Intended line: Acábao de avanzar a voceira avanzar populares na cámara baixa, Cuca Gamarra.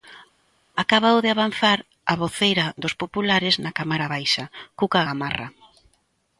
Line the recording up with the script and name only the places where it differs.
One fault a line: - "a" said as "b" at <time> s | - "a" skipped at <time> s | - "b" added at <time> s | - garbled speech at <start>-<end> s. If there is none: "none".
- "avanzar" said as "dos" at 2.8 s